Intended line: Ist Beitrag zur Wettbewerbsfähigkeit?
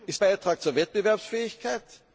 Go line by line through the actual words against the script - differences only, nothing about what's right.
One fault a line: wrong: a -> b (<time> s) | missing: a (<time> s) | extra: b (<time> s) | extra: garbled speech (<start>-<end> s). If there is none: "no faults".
no faults